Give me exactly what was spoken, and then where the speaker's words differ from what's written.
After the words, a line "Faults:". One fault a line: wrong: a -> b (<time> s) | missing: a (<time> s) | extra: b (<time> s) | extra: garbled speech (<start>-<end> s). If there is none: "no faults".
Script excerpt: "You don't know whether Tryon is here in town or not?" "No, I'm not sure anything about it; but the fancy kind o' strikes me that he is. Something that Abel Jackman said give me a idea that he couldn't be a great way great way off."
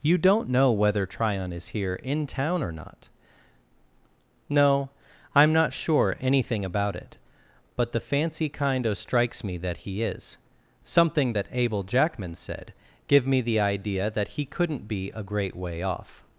"You don't know whether Tryon is here in town or not?" "No, I'm not sure anything about it; but the fancy kind o' strikes me that he is. Something that Abel Jackman said give me the idea that he couldn't be a great way off."
Faults:
wrong: a -> the (13.4 s)
missing: great way (15.8 s)